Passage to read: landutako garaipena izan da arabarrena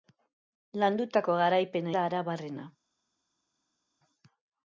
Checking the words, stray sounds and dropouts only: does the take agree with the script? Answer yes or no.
no